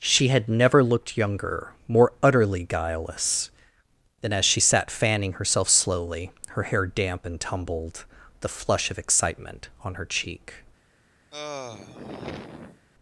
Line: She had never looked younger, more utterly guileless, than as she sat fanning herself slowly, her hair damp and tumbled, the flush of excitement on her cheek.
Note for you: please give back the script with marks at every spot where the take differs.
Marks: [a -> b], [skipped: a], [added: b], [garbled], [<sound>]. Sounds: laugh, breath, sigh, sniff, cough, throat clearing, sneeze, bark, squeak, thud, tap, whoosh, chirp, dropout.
She had never looked younger, more utterly guileless, than as she sat fanning herself slowly, her hair damp and tumbled, the flush of excitement on her cheek. [sigh]